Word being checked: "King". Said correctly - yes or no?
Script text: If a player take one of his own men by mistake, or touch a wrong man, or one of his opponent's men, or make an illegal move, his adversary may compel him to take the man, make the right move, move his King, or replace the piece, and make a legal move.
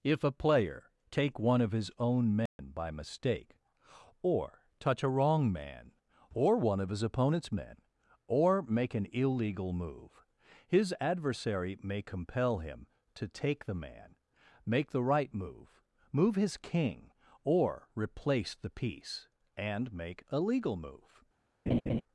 yes